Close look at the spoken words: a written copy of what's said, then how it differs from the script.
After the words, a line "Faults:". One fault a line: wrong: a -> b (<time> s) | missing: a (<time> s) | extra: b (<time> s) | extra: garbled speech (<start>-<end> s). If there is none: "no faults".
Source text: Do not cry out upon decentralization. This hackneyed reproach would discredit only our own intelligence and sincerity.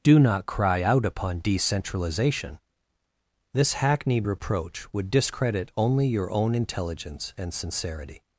Do not cry out upon decentralization. This hackneyed reproach would discredit only your own intelligence and sincerity.
Faults:
wrong: our -> your (6.1 s)